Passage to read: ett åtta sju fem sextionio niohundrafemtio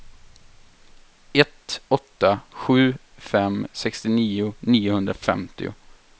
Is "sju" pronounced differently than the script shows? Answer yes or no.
no